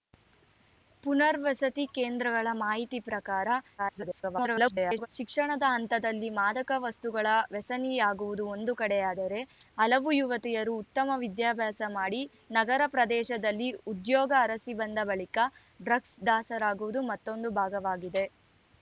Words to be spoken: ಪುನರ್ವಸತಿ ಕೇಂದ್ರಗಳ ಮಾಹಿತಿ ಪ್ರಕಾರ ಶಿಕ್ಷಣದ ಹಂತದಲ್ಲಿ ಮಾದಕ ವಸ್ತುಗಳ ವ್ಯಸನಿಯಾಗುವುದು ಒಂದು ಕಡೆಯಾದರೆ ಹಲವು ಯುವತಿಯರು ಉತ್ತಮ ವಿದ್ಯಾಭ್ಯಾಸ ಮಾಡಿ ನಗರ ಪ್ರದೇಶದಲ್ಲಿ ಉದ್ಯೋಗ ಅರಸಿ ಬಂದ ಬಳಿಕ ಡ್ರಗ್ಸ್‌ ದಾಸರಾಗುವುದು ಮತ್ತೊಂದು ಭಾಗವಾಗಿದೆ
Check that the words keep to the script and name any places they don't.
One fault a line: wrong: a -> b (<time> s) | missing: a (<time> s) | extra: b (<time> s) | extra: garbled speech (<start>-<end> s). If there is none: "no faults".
extra: garbled speech (3.8-5.1 s)